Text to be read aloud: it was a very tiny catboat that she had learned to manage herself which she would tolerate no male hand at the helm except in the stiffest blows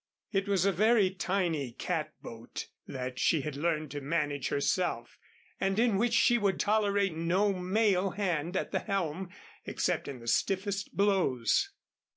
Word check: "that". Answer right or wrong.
right